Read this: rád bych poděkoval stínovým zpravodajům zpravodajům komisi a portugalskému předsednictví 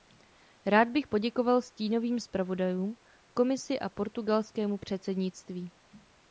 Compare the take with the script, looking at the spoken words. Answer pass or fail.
fail